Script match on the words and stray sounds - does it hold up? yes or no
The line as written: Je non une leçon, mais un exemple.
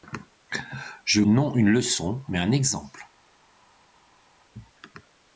yes